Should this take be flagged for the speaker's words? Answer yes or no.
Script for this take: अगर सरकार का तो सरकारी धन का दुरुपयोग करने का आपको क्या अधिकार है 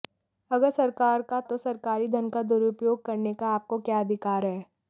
no